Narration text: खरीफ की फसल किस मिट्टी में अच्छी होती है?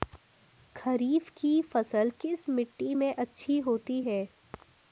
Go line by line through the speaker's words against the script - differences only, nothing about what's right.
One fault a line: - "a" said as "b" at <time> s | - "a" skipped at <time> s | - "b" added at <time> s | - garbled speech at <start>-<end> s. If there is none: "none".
none